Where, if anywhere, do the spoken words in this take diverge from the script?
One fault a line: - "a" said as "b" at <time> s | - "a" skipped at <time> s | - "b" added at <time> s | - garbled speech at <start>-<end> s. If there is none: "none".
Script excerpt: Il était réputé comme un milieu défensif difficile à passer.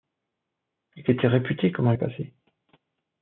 - "milieu défensif difficile" skipped at 1.9 s